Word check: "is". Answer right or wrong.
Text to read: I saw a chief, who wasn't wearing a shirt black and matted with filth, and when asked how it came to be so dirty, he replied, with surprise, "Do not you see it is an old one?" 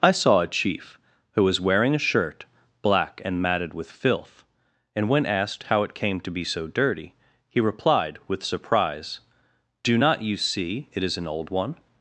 right